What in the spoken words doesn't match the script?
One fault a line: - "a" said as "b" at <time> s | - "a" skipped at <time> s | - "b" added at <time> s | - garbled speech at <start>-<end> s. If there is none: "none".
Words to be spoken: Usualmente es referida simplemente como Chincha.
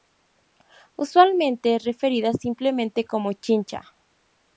none